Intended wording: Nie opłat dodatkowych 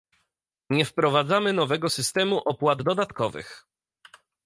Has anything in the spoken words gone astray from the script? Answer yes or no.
yes